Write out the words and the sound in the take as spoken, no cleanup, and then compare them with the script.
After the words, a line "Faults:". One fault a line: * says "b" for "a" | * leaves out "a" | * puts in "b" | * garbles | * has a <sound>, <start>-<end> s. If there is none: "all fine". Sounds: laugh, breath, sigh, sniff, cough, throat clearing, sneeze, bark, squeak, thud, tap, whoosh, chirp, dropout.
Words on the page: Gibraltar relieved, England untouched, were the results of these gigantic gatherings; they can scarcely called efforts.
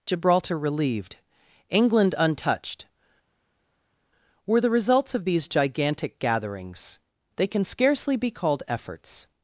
Gibraltar relieved, England untouched, were the results of these gigantic gatherings; they can scarcely be called efforts.
Faults:
* puts in "be"